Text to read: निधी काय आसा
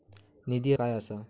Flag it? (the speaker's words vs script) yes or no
no